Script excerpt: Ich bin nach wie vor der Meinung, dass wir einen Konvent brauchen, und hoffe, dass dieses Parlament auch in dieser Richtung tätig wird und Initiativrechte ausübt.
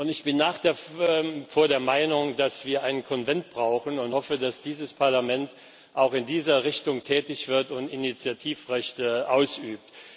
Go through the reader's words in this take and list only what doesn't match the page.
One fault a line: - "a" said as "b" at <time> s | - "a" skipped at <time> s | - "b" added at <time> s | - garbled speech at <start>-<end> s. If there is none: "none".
none